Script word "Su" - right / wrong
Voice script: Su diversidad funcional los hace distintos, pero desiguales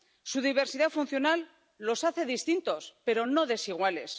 right